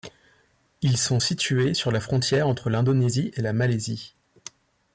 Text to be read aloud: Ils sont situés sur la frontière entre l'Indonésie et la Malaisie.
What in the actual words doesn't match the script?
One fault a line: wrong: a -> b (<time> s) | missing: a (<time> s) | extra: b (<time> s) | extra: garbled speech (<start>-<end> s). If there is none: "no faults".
no faults